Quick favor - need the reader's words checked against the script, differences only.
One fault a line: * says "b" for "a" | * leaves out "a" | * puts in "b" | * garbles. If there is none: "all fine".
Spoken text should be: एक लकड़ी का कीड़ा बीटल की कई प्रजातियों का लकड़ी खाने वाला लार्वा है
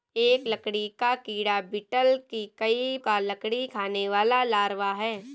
* leaves out "प्रजातियों"